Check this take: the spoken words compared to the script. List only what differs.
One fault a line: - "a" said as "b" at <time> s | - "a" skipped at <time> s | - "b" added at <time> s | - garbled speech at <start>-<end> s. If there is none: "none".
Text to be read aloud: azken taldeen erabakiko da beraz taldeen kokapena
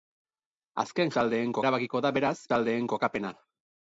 none